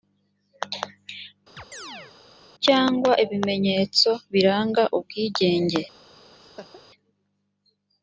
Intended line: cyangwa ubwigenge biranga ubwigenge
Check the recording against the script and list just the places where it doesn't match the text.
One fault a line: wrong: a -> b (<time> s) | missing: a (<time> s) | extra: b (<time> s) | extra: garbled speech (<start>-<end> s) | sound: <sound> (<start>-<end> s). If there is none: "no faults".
sound: chirp (1.6-2.1 s)
wrong: ubwigenge -> ibimenyetso (3.2 s)
sound: laugh (6.3-6.8 s)